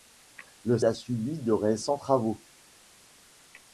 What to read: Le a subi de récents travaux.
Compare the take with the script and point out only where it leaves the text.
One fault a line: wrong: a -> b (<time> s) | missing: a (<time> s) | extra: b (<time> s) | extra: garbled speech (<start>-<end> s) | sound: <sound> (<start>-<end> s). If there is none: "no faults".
no faults